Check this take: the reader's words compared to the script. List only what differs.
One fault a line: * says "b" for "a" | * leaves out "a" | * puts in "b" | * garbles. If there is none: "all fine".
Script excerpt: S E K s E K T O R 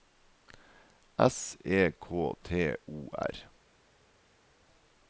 * leaves out "s E K"